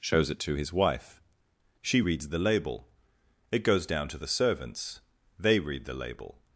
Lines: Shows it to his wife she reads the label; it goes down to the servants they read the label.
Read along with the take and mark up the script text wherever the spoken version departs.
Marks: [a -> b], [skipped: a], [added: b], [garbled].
Shows it to his wife she reads the label; it goes down to the servants they read the label.